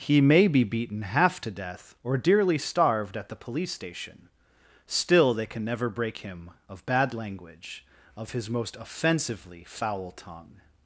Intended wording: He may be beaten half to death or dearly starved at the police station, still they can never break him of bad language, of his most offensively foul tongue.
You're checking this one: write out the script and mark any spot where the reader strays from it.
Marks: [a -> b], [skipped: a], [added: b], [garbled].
He may be beaten half to death or dearly starved at the police station, still they can never break him of bad language, of his most offensively foul tongue.